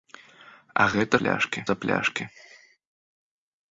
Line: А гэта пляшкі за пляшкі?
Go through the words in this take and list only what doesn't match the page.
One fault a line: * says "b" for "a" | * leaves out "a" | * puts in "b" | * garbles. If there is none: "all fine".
all fine